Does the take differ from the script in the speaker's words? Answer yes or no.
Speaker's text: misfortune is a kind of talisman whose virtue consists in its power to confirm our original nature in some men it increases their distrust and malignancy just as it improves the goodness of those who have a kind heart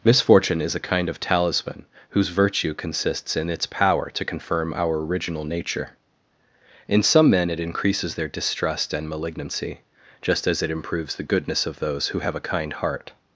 no